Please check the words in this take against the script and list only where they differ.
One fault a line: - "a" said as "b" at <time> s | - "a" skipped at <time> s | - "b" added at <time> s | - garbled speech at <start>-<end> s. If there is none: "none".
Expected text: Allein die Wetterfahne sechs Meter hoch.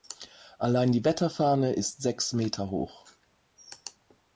- "ist" added at 1.7 s